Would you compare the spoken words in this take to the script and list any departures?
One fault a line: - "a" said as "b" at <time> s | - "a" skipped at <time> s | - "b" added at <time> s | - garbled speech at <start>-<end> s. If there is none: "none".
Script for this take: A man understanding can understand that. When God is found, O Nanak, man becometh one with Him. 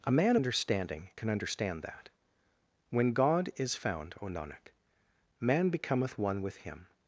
none